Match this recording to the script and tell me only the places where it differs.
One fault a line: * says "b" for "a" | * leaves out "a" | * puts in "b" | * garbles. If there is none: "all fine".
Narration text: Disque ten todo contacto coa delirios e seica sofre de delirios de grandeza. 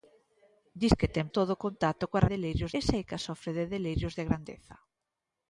all fine